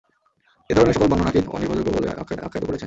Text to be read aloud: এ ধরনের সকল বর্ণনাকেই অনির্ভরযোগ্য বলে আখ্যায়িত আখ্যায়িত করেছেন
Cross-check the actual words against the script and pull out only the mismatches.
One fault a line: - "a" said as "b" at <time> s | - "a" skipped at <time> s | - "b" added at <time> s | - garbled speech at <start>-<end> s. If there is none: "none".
none